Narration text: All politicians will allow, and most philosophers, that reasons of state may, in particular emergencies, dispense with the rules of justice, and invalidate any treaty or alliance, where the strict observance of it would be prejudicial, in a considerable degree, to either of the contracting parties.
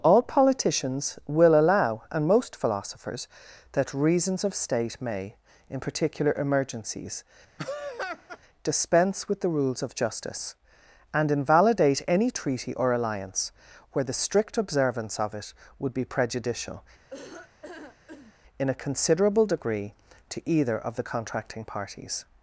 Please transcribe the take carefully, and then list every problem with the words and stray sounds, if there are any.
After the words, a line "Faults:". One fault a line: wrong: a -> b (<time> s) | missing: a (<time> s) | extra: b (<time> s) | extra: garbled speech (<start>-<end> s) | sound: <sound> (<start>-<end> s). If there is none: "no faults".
All politicians will allow, and most philosophers, that reasons of state may, in particular emergencies, dispense with the rules of justice, and invalidate any treaty or alliance, where the strict observance of it would be prejudicial, in a considerable degree, to either of the contracting parties.
Faults:
sound: laugh (7.6-8.4 s)
sound: laugh (17.1-18.3 s)